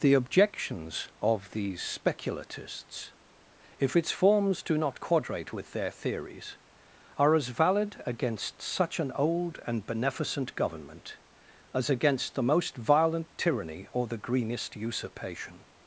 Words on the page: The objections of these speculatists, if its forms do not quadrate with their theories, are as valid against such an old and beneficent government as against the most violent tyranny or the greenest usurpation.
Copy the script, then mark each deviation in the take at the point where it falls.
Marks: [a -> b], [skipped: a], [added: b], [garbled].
The objections of these speculatists, if its forms do not quadrate with their theories, are as valid against such an old and beneficent government as against the most violent tyranny or the greenest usurpation.